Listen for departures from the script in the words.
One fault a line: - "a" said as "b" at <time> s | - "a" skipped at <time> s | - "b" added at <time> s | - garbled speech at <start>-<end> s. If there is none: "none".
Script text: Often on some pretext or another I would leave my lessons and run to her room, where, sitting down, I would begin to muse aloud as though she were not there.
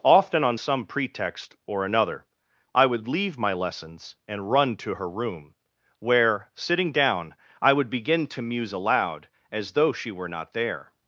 none